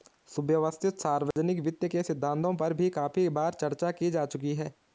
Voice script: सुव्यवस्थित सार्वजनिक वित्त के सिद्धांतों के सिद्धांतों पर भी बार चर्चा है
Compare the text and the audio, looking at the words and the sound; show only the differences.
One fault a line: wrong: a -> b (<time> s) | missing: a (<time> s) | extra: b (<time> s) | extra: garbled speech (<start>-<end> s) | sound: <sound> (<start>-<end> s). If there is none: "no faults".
sound: dropout (1.3-1.4 s)
missing: के सिद्धांतों (2.5 s)
extra: काफी (2.9 s)
extra: की जा चुकी (3.9 s)